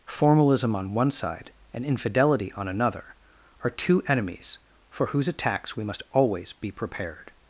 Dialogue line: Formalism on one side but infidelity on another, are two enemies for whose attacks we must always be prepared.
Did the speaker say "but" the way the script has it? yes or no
no